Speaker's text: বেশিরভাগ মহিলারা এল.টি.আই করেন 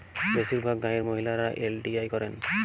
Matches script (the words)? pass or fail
fail